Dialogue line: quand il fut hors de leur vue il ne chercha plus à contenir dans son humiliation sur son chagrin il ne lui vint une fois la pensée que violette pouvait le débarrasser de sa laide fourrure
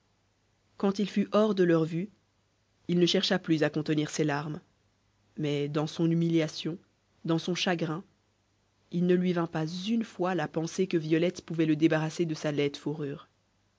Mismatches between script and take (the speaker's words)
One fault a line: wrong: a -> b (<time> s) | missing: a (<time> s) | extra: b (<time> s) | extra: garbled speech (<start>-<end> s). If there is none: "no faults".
extra: ses larmes mais (4.1 s)
wrong: sur -> dans (7.2 s)
extra: pas (9.4 s)